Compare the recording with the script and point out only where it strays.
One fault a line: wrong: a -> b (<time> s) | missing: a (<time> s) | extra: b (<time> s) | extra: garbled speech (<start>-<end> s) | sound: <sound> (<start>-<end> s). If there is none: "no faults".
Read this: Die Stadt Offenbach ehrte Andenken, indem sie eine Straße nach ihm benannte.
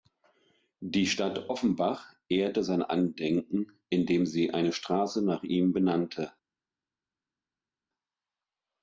extra: sein (2.6 s)